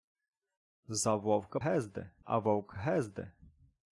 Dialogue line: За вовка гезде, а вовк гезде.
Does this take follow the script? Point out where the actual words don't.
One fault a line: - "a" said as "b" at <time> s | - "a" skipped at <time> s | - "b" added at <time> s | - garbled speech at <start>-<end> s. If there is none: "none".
none